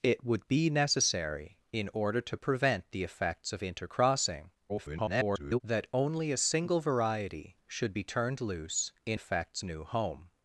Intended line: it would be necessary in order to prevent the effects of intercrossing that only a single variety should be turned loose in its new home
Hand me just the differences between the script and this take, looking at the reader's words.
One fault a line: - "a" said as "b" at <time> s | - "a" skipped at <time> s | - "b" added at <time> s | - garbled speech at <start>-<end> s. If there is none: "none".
- garbled speech at 4.7-5.6 s
- "its" said as "effects" at 9.1 s